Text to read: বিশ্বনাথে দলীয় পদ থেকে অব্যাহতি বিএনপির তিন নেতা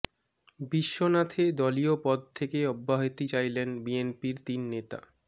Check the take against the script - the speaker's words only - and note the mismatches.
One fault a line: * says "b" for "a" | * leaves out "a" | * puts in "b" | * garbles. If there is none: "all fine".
* puts in "চাইলেন"